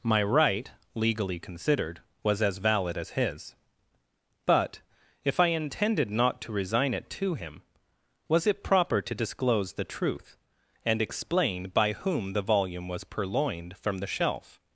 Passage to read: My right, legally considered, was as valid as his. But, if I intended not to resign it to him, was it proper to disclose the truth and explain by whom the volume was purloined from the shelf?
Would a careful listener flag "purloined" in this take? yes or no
no